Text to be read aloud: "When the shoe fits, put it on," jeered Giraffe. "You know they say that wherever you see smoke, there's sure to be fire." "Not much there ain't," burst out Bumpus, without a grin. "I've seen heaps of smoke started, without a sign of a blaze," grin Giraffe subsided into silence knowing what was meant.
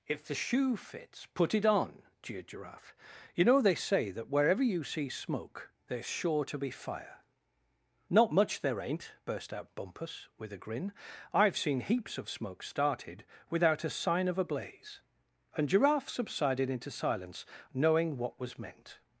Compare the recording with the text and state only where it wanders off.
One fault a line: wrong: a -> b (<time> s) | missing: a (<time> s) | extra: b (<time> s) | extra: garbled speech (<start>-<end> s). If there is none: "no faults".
wrong: When -> If (0.1 s)
wrong: without -> with (10.4 s)
wrong: grin -> and (15.6 s)